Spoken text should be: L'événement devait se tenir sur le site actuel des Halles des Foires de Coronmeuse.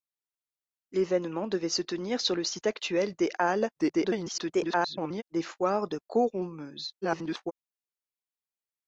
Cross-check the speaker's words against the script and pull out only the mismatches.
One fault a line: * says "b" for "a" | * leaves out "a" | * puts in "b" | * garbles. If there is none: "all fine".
* garbles
* garbles